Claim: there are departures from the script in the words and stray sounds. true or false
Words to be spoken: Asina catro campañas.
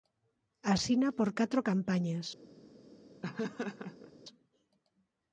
true